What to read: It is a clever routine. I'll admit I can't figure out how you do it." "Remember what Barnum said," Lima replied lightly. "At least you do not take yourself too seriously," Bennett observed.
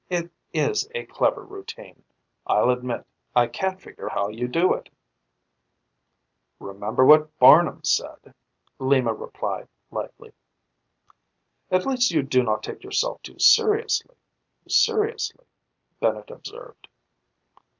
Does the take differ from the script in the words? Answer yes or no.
yes